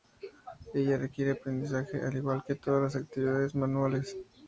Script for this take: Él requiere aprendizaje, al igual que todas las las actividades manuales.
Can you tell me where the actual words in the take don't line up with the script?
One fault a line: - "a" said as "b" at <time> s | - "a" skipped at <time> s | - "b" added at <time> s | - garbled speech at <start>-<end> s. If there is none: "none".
- "Él" said as "Ella" at 0.7 s
- "las" skipped at 3.0 s